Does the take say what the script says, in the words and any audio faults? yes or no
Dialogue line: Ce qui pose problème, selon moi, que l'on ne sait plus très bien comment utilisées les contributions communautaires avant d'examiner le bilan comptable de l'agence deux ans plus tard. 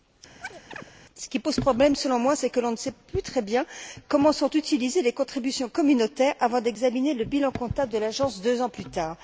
no